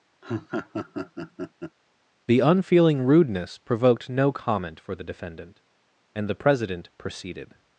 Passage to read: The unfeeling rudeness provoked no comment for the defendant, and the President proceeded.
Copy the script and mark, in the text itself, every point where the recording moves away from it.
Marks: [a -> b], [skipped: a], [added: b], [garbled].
The unfeeling rudeness provoked no comment for the defendant, and the President proceeded.